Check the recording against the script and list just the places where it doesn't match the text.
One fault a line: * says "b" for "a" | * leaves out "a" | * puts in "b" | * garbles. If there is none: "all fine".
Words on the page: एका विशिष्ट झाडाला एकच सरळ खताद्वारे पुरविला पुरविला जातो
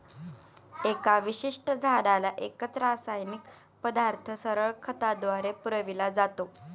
* puts in "रासायनिक पदार्थ"
* leaves out "पुरविला"